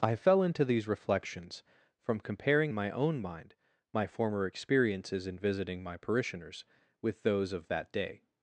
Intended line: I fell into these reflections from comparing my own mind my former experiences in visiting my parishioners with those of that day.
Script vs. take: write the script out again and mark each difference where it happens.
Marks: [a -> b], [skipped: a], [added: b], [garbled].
I fell into these reflections from comparing my own mind my former experiences in visiting my parishioners with those of that day.